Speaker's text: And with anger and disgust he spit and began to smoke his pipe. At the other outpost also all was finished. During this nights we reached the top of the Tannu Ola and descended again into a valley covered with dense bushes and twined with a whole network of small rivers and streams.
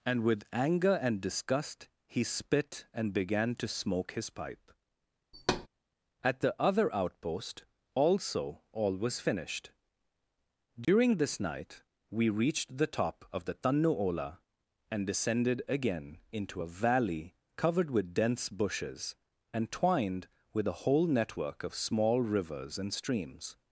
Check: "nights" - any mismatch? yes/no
yes